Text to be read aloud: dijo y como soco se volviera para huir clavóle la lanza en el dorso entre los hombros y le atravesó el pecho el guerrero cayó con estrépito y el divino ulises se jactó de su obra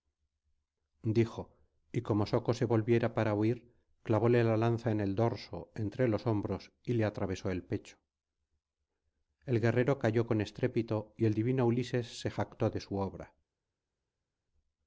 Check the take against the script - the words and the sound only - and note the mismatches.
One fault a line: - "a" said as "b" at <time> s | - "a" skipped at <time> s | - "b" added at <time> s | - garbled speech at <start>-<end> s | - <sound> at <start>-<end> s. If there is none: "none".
none